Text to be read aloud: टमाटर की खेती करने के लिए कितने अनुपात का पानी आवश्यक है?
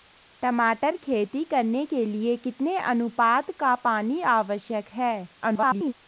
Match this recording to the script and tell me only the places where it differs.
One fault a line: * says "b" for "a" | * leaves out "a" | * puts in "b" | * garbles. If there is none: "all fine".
* leaves out "की"
* garbles